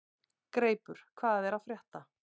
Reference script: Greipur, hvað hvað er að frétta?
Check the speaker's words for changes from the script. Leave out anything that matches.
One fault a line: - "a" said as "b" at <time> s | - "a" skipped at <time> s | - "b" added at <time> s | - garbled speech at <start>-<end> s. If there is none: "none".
- "hvað" skipped at 1.5 s